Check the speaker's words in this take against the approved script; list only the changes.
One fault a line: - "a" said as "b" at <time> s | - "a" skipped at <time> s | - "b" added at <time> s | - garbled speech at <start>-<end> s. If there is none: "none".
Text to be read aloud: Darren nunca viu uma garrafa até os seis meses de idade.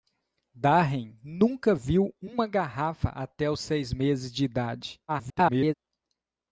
- garbled speech at 5.1-5.7 s